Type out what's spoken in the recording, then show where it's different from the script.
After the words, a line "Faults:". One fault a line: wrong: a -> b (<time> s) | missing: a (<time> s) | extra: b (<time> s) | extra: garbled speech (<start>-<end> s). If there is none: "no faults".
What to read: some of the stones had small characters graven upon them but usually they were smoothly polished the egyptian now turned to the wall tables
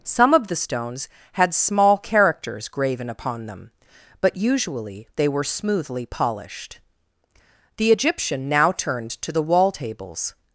some of the stones had small characters graven upon them but usually they were smoothly polished the egyptian now turned to the wall tables
Faults:
no faults